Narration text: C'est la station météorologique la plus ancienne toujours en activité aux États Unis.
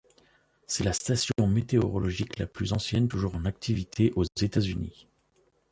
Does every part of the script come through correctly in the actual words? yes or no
yes